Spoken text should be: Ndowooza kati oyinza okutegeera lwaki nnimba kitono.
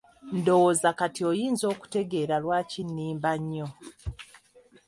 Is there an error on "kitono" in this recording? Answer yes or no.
yes